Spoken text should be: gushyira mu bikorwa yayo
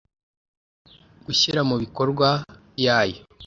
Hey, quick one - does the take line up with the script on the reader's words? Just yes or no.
yes